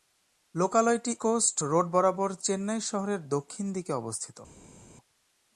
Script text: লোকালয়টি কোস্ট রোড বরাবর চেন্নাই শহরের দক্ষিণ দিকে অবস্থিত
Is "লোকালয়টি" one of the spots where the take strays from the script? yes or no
no